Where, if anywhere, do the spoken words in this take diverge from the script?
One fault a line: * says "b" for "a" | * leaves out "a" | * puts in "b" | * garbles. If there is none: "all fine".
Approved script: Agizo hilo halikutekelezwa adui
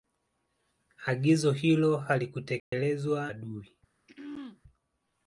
all fine